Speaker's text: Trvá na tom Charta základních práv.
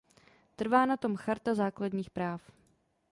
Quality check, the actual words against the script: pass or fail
pass